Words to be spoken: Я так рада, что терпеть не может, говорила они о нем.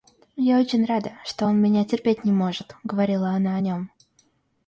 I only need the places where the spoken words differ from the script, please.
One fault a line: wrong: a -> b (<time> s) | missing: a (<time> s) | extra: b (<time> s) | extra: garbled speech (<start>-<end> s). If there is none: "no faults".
wrong: так -> очень (0.6 s)
extra: он меня (1.4 s)
wrong: они -> она (3.3 s)